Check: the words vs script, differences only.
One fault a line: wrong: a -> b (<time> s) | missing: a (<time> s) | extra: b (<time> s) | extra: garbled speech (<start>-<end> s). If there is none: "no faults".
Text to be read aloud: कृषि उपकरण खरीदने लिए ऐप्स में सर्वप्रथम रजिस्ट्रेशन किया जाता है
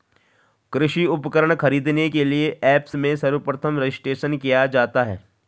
extra: के (2.1 s)